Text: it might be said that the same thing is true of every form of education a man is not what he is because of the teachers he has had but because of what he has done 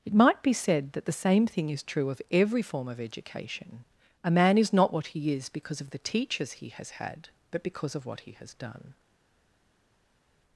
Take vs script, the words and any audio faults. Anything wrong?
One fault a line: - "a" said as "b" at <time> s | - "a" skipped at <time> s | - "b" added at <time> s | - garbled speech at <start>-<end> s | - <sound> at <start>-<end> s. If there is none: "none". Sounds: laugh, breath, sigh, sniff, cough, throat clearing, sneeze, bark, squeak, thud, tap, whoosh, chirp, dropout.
none